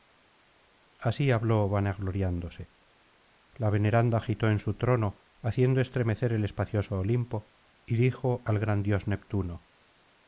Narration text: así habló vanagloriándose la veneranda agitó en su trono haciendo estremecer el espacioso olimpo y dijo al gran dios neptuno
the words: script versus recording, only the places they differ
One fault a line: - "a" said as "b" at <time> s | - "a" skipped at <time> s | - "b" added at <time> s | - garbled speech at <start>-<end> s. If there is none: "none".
none